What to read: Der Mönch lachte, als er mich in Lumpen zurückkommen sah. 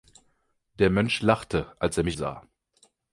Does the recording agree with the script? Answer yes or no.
no